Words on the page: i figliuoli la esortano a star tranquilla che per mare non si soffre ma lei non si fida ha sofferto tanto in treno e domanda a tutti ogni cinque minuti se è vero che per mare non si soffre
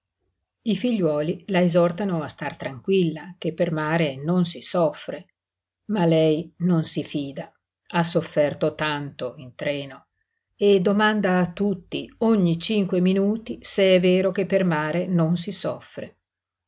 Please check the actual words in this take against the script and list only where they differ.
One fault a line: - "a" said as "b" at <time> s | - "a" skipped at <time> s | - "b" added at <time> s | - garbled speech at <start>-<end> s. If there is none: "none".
none